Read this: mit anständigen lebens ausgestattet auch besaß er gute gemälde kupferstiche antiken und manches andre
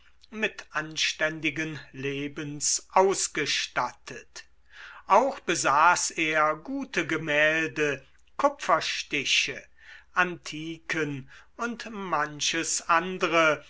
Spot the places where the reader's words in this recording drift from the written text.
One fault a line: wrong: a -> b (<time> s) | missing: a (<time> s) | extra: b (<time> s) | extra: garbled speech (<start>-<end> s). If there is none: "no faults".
no faults